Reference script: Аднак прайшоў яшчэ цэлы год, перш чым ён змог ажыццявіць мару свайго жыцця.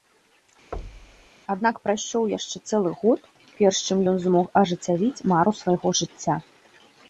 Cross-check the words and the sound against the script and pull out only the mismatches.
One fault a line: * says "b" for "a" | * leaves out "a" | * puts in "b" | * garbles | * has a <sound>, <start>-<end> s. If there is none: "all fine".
* has a thud, 0.7-1.3 s